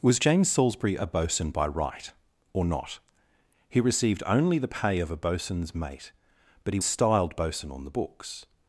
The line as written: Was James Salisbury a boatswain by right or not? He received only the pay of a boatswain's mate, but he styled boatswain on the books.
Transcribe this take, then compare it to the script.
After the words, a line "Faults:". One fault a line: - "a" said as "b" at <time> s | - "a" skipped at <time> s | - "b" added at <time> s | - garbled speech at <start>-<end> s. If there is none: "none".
Was James Salisbury a boatswain by right or not? He received only the pay of a boatswain's mate, but he styled boatswain on the books.
Faults:
none